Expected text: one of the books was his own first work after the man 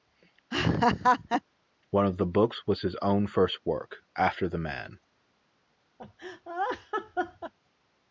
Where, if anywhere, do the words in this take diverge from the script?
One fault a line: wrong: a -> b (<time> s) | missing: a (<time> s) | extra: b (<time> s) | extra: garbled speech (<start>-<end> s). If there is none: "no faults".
no faults